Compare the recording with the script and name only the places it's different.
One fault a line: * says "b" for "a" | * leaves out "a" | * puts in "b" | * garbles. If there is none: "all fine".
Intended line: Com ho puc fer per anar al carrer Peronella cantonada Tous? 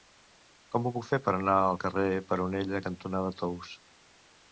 all fine